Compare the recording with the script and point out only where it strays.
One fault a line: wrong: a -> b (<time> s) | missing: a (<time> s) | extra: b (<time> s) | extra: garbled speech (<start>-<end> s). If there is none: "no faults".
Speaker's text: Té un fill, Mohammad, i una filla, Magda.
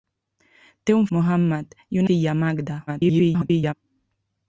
missing: fill (1.1 s)
missing: una (2.0 s)
extra: garbled speech (2.9-3.7 s)